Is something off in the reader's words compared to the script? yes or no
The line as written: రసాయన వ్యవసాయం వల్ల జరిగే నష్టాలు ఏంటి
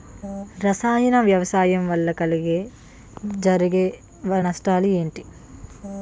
no